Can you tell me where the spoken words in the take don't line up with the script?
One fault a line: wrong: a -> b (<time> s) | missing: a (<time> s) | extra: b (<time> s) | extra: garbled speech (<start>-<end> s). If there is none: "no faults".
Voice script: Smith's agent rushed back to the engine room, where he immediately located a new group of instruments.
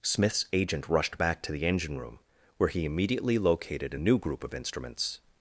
no faults